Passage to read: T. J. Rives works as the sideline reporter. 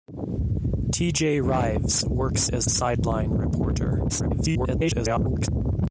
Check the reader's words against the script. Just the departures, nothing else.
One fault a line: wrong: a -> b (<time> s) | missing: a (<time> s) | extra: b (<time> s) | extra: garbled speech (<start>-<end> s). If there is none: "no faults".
missing: the (2.7 s)
extra: garbled speech (4.1-5.5 s)